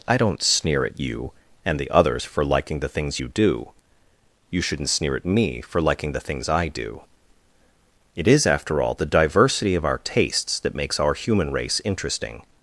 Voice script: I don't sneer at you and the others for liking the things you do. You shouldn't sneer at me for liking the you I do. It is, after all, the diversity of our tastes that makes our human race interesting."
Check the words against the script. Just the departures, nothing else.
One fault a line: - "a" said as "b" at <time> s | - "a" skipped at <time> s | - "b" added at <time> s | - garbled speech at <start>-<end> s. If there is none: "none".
- "you" said as "things" at 6.2 s